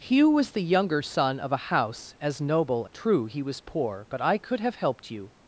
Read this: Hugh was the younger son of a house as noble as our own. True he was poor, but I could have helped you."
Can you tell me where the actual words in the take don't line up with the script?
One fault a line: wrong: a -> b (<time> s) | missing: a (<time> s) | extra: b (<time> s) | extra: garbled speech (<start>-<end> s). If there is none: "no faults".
missing: as our own (2.9 s)